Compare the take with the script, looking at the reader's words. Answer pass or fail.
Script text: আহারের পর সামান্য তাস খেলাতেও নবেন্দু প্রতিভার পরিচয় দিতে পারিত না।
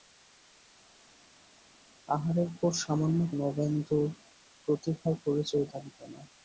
fail